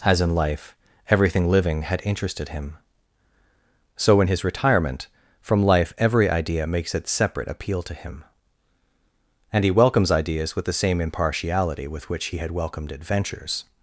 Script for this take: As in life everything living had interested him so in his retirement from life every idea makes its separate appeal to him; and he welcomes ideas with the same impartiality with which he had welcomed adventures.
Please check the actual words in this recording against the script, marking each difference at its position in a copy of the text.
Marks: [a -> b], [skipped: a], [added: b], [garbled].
As in life everything living had interested him so in his retirement from life every idea makes its separate appeal to him; and he welcomes ideas with the same impartiality with which he had welcomed adventures.